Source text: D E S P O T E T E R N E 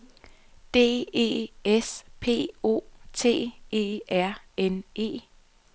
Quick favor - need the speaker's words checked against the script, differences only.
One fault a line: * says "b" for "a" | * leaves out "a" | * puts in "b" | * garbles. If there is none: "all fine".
* leaves out "T E"